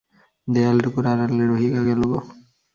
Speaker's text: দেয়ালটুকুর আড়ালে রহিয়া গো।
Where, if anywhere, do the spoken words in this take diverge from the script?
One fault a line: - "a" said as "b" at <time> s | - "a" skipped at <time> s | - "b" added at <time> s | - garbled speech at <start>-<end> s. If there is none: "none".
- "গেল" added at 1.9 s